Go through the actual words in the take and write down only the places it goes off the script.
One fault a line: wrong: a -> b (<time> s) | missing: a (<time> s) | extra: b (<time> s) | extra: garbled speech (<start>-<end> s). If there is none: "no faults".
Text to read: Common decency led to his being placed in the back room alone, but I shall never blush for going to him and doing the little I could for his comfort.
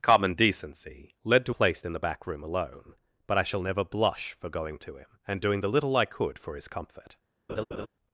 missing: his being (1.6 s)